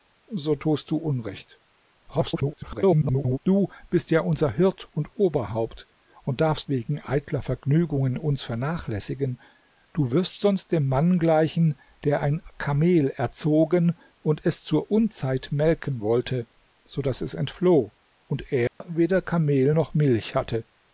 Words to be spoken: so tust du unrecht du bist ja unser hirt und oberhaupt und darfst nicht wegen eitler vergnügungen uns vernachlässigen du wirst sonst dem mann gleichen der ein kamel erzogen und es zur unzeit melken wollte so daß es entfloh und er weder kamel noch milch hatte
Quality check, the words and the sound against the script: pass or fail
fail